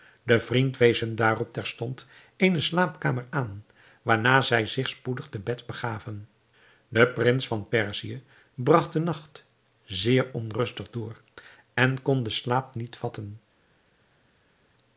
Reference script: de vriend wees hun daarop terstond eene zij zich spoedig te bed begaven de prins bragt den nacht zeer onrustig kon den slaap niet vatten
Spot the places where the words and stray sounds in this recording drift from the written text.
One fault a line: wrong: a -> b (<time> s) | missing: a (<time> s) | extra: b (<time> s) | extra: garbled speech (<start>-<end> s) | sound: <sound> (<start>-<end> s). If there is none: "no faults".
extra: slaapkamer aan waarna (2.6 s)
extra: van perzië (7.5 s)
extra: door en (10.9 s)